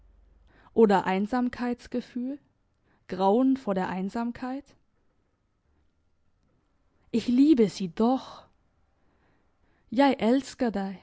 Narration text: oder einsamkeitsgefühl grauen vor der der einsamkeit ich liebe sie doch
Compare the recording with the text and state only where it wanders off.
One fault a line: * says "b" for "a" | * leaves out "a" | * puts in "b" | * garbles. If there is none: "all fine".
* leaves out "der"